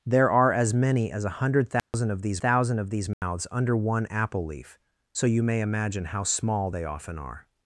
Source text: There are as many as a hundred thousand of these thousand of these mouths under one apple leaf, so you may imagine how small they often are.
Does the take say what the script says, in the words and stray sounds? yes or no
no